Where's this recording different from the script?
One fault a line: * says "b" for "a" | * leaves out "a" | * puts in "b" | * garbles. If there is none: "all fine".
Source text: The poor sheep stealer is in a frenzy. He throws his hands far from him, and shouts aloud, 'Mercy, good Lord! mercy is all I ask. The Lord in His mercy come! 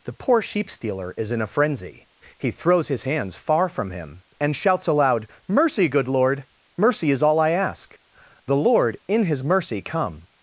all fine